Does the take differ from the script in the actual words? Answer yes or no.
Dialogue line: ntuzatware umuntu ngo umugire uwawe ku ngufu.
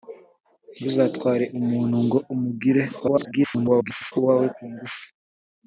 yes